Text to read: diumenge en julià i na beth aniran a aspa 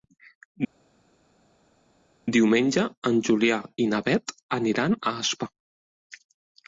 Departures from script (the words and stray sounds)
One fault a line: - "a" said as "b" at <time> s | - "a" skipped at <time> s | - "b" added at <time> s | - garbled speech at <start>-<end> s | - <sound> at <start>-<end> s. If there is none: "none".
none